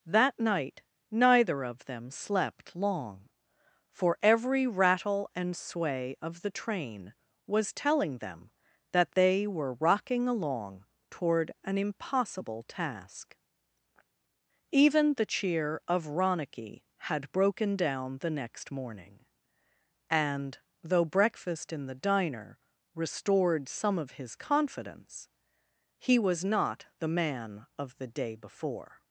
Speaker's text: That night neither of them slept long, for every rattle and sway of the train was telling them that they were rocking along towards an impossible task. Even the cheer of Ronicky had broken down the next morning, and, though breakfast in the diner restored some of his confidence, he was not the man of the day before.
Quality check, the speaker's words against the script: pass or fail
fail